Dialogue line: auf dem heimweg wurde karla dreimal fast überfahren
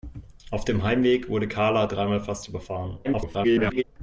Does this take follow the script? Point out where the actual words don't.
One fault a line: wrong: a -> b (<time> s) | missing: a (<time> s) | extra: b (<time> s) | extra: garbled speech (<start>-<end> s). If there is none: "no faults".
extra: garbled speech (3.0-3.8 s)